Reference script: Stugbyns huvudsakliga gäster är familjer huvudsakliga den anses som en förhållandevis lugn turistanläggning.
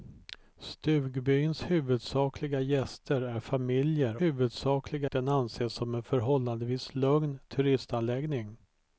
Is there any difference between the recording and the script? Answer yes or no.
no